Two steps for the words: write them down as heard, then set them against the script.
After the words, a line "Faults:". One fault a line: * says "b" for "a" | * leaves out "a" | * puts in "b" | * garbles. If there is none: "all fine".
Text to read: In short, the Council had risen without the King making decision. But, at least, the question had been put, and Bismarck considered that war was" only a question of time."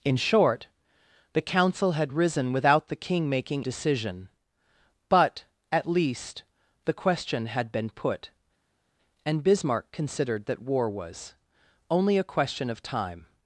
In short, the Council had risen without the King making decision. But, at least, the question had been put, and Bismarck considered that war was" only a question of time."
Faults:
all fine